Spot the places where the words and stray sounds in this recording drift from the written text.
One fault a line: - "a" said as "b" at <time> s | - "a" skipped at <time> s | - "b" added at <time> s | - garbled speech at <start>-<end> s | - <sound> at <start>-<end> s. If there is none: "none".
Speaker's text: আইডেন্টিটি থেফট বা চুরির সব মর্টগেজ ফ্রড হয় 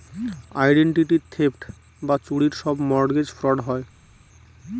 none